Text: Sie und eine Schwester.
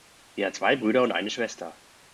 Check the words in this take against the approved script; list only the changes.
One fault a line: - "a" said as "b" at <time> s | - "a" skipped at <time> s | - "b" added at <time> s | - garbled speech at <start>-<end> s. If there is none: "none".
- "hat zwei Brüder" added at 0.5 s